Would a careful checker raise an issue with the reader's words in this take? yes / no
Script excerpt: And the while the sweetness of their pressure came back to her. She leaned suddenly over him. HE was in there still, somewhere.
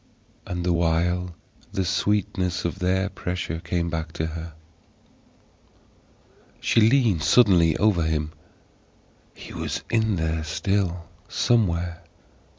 no